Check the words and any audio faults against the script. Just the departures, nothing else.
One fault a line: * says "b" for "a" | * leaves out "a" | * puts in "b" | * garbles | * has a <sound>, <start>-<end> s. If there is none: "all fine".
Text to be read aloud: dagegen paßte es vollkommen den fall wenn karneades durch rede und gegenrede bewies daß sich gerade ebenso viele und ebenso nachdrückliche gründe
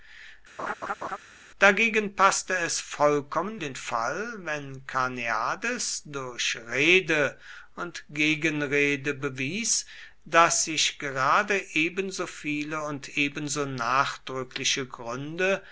* has a laugh, 0.6-1.2 s